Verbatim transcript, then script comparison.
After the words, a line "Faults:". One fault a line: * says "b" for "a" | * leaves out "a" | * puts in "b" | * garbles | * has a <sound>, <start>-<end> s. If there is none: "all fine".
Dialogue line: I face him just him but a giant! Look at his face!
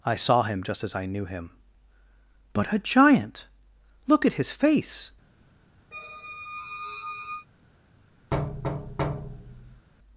I saw him just as I knew him but a giant! Look at his face!
Faults:
* says "saw" for "face"
* puts in "as I knew"
* has a squeak, 5.9-7.5 s
* has a thud, 8.3-9.9 s